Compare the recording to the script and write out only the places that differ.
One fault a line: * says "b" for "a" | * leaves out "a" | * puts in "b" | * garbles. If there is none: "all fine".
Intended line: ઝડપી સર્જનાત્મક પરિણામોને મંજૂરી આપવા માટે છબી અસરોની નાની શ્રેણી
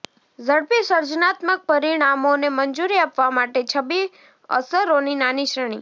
all fine